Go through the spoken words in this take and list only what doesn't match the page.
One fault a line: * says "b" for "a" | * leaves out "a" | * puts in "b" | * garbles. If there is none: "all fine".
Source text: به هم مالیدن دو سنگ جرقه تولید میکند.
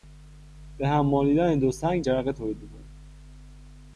all fine